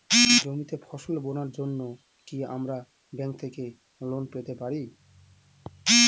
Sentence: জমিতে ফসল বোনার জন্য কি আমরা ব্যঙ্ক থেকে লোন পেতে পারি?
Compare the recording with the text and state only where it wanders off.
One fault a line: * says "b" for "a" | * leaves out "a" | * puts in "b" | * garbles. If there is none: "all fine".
all fine